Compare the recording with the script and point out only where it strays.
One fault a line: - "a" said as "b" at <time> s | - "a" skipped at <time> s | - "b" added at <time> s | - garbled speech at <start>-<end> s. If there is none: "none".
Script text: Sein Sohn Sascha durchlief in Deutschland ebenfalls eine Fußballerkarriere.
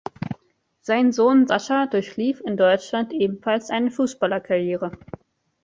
none